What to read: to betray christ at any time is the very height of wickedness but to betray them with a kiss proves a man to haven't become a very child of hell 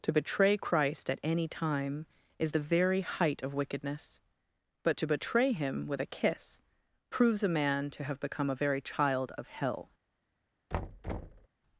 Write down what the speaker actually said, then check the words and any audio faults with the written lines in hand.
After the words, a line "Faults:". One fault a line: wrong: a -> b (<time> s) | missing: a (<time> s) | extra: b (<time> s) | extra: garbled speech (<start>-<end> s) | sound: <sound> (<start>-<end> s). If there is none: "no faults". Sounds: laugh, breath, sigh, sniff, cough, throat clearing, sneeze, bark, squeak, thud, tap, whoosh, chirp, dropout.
to betray christ at any time is the very height of wickedness but to betray him with a kiss proves a man to have become a very child of hell
Faults:
wrong: them -> him (5.5 s)
wrong: haven't -> have (8.0 s)
sound: thud (10.7-11.5 s)